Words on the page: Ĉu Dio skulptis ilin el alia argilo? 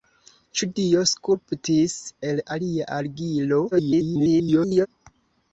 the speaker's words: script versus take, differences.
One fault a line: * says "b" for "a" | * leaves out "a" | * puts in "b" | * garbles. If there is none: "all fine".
* leaves out "ilin"
* garbles